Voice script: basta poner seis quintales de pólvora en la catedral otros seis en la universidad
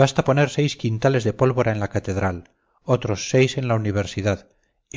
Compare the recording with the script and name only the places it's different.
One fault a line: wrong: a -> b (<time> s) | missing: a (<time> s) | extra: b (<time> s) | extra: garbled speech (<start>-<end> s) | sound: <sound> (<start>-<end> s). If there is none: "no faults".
no faults